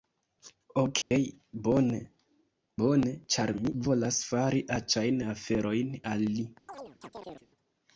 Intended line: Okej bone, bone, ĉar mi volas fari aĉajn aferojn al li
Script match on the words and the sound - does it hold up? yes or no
no